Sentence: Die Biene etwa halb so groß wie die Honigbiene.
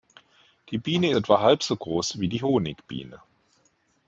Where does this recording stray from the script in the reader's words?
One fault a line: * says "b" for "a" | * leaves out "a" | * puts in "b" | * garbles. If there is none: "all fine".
all fine